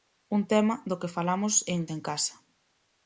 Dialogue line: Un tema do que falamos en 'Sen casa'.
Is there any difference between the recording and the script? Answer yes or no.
no